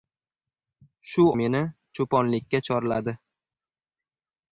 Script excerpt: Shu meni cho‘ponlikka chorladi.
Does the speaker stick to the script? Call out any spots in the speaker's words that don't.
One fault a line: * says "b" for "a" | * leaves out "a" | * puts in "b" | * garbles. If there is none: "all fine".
all fine